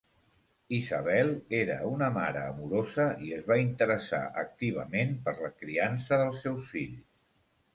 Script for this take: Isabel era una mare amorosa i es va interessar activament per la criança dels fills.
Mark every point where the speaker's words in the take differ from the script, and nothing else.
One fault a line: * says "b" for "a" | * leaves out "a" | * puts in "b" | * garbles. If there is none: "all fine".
* puts in "seus"